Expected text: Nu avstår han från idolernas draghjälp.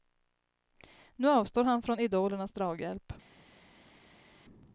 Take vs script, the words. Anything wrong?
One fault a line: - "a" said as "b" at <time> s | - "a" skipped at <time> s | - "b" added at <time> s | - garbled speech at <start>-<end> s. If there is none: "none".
none